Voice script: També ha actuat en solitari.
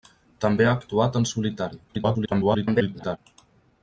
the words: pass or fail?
fail